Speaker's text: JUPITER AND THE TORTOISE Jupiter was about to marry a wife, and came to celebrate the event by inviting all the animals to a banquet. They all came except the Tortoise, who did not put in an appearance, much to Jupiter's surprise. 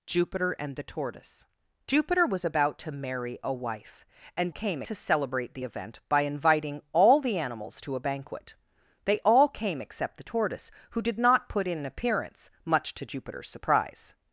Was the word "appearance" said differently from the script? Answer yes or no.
no